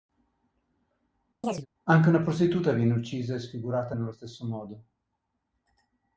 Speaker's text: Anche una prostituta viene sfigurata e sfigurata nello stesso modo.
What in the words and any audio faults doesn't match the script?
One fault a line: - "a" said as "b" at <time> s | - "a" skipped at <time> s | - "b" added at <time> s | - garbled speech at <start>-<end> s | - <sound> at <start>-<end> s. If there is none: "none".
- chirp at 1.4-1.7 s
- "sfigurata" said as "uccisa" at 2.9 s